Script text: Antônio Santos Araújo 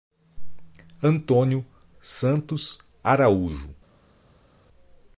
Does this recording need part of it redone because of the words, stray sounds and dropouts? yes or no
no